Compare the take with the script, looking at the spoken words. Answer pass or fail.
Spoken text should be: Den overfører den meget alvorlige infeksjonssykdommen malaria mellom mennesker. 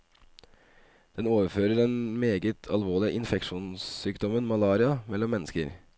pass